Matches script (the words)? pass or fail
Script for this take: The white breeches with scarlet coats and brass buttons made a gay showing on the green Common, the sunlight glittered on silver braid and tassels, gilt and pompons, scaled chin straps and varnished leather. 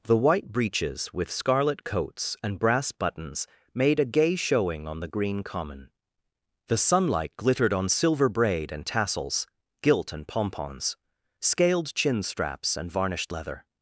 pass